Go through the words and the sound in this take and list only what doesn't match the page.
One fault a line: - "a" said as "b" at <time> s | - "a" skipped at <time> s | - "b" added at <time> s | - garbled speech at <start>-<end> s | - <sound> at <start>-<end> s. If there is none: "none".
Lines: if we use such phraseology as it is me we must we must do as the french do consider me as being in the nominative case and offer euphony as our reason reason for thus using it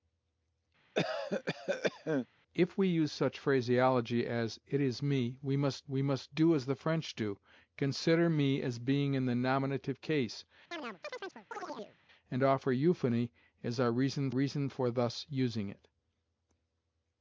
- cough at 0.9-2.3 s
- chirp at 10.7-12.0 s